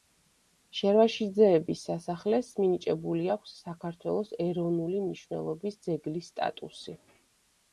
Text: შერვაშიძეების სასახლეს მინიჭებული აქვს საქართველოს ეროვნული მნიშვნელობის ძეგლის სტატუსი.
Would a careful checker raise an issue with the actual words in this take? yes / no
no